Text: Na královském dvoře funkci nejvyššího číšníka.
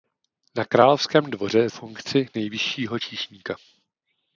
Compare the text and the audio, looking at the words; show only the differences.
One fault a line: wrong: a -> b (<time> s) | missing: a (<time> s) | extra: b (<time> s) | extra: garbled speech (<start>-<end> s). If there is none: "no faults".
no faults